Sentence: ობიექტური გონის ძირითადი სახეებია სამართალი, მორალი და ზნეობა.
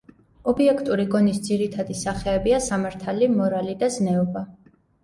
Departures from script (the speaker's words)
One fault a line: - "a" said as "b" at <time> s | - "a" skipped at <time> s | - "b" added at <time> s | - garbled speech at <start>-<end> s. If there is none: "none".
none